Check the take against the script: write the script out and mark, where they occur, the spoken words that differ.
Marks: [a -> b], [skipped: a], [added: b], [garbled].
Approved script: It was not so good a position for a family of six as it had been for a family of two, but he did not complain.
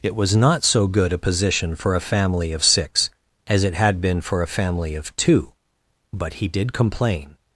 It was not so good a position for a family of six as it had been for a family of two, but he did [skipped: not] complain.